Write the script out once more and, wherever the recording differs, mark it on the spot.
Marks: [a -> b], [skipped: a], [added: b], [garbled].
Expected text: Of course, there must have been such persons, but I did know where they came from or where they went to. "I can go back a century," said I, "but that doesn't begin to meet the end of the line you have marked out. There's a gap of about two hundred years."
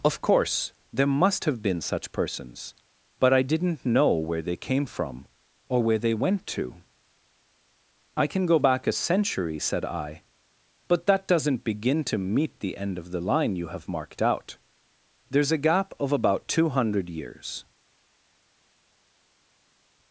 Of course, there must have been such persons, but I [did -> didn't] know where they came from or where they went to. "I can go back a century," said I, "but that doesn't begin to meet the end of the line you have marked out. There's a gap of about two hundred years."